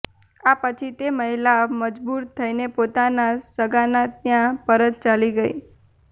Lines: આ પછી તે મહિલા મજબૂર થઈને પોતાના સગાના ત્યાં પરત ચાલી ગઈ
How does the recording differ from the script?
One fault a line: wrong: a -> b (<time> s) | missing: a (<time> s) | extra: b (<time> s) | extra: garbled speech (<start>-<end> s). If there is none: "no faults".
no faults